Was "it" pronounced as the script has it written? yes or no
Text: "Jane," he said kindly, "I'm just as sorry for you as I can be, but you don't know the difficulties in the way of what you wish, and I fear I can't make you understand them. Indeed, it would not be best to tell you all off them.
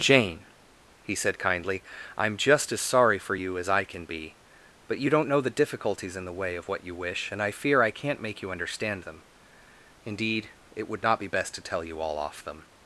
yes